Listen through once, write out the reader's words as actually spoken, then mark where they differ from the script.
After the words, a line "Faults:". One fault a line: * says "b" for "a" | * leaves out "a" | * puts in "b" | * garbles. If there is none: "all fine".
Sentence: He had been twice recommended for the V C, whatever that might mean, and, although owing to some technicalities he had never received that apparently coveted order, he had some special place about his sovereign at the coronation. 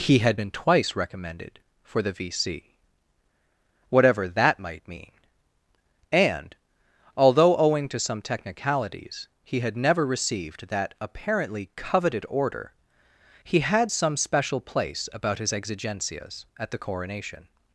He had been twice recommended for the V C, whatever that might mean, and, although owing to some technicalities he had never received that apparently coveted order, he had some special place about his exigencias at the coronation.
Faults:
* says "exigencias" for "sovereign"